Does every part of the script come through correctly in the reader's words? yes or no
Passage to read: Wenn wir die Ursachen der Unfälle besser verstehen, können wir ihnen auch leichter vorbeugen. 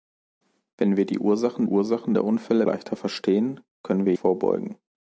no